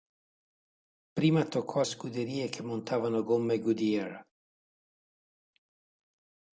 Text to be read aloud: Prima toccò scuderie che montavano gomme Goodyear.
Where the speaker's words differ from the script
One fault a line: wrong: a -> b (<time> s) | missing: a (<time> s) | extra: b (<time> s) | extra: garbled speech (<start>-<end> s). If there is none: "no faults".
no faults